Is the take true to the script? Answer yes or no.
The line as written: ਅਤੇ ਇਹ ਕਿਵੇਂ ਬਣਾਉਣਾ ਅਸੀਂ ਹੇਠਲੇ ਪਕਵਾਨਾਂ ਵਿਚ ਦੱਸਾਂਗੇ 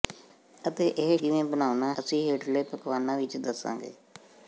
yes